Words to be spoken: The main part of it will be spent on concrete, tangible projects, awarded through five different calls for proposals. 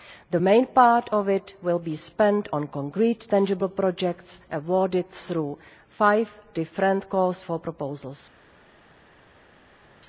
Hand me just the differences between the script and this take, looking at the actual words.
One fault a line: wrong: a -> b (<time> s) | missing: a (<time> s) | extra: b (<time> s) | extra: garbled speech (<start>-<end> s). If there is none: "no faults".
no faults